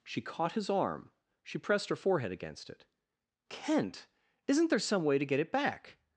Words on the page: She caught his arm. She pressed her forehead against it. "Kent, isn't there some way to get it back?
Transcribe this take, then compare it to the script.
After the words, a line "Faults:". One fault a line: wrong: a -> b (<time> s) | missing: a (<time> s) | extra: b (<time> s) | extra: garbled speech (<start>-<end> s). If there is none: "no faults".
She caught his arm. She pressed her forehead against it. "Kent, isn't there some way to get it back?
Faults:
no faults